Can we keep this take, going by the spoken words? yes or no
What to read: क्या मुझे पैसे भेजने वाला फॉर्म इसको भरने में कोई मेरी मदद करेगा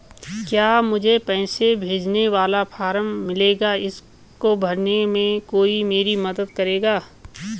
no